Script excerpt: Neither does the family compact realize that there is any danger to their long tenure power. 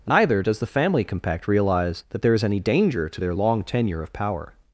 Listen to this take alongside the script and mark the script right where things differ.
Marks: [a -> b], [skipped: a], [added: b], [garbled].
Neither does the family compact realize that there is any danger to their long tenure [added: of] power.